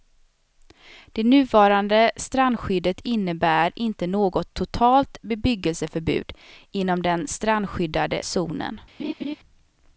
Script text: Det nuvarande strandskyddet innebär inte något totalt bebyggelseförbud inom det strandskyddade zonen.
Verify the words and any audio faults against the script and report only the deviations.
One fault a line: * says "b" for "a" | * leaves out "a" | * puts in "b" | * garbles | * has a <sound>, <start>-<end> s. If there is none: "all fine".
* says "den" for "det"
* has a laugh, 9.0-9.4 s